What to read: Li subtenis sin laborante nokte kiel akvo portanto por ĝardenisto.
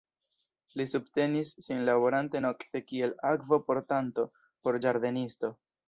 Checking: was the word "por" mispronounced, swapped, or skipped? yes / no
no